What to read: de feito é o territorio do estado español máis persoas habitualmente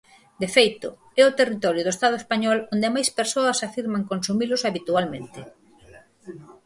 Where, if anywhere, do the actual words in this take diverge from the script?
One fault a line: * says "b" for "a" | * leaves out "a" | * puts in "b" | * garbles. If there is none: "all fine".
* puts in "onde"
* puts in "afirman consumilos"